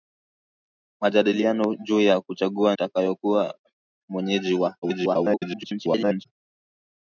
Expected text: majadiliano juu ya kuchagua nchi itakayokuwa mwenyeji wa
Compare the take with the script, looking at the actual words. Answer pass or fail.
fail